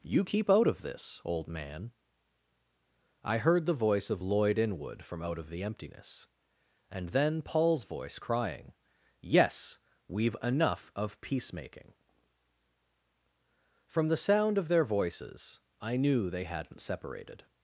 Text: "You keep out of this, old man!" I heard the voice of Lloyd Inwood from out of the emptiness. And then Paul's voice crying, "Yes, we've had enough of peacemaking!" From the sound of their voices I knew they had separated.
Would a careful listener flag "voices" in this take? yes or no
no